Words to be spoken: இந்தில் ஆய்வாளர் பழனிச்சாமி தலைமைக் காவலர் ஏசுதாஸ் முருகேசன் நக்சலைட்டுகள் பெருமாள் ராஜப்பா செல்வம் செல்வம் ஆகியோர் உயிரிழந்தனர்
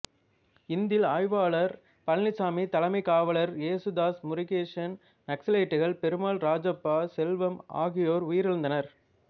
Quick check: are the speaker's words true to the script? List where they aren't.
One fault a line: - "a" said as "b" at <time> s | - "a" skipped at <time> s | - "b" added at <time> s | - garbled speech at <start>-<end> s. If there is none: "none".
- "செல்வம்" skipped at 7.5 s